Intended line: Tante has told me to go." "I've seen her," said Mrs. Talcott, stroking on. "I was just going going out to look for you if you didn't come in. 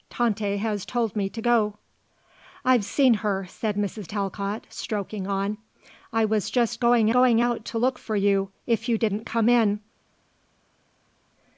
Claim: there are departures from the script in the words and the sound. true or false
false